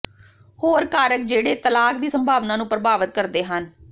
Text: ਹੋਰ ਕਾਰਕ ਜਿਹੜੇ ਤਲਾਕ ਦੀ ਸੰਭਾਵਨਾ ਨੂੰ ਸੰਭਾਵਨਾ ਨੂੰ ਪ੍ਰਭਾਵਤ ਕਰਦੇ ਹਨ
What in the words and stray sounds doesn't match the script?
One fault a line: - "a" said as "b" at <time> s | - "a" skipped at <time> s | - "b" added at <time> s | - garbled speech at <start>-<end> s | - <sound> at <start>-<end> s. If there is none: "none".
- "ਸੰਭਾਵਨਾ ਨੂੰ" skipped at 2.7 s